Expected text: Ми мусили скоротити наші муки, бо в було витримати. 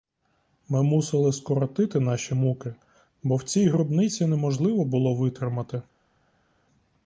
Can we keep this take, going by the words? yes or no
no